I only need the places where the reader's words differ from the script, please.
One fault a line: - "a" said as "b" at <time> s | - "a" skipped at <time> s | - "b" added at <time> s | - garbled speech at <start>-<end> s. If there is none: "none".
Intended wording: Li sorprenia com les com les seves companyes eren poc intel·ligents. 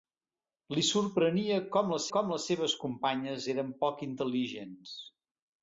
none